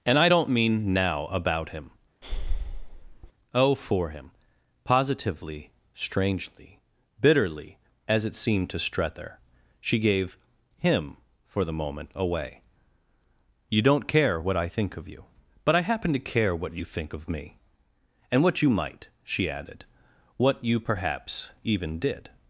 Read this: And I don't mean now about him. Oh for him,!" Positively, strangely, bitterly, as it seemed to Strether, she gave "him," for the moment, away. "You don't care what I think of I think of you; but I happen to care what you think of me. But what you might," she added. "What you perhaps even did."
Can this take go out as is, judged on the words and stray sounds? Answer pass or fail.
fail